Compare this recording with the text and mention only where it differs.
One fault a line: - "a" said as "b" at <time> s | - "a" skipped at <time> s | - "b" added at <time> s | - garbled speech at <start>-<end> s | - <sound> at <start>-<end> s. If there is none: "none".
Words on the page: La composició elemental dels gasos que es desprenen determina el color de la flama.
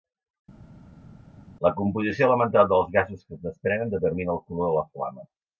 none